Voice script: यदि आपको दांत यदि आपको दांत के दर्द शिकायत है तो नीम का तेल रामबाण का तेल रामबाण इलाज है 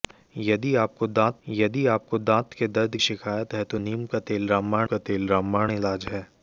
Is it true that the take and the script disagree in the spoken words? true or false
false